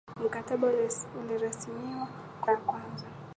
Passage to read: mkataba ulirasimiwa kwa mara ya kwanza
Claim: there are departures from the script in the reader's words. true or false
true